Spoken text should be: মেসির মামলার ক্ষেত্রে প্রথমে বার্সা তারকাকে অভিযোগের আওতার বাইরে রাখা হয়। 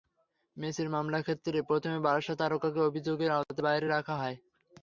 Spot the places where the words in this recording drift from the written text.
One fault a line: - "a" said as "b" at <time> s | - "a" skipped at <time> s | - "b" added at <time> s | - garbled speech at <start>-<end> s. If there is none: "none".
none